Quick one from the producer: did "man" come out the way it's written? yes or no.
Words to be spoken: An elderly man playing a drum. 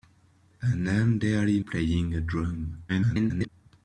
no